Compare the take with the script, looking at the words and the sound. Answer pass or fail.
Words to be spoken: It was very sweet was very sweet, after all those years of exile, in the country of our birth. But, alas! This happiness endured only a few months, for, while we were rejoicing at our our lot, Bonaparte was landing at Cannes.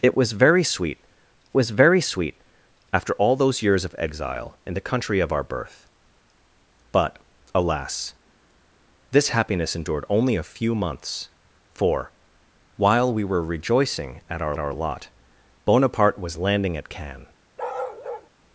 fail